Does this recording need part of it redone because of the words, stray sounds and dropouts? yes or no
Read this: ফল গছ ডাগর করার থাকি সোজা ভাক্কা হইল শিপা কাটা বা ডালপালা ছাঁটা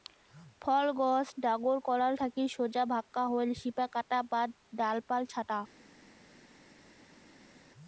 no